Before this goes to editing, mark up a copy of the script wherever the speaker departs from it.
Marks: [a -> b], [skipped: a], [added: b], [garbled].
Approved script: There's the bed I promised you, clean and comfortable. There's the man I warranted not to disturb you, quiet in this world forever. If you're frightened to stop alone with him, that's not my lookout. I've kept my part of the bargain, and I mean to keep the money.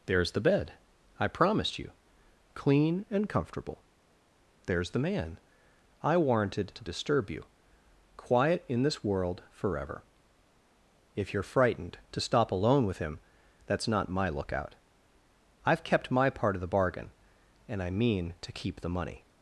There's the bed I promised you, clean and comfortable. There's the man I warranted [skipped: not] to disturb you, quiet in this world forever. If you're frightened to stop alone with him, that's not my lookout. I've kept my part of the bargain, and I mean to keep the money.